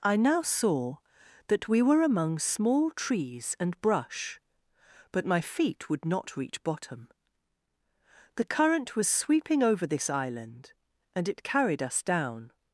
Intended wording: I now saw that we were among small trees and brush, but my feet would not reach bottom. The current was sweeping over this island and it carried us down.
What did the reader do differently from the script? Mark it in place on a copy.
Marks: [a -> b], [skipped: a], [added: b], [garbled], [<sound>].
I now saw that we were among small trees and brush, but my feet would not reach bottom. The current was sweeping over this island and it carried us down.